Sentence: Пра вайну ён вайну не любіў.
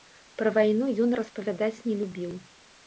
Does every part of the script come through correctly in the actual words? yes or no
no